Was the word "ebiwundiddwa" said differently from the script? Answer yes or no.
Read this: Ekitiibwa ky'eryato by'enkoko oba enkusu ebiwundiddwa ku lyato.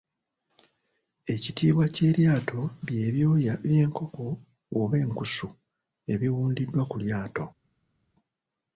no